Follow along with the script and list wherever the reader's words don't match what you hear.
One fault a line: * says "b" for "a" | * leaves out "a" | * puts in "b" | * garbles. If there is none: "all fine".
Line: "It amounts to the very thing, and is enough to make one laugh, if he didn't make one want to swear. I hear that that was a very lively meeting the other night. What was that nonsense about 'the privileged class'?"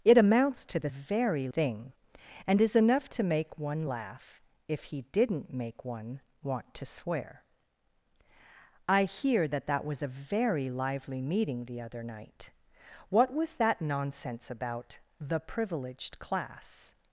all fine